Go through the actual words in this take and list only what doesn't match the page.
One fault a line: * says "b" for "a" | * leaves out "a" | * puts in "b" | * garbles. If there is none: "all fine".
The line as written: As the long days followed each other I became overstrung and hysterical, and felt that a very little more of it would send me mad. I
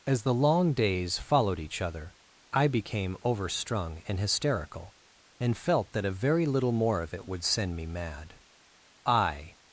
all fine